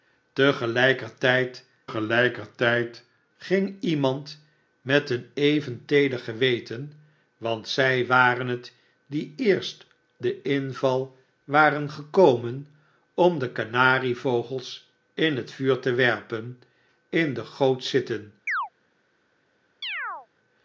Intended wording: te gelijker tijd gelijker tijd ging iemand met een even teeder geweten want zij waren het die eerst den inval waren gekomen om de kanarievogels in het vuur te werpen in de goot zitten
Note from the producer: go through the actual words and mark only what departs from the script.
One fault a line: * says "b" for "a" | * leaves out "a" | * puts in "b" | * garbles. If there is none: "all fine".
all fine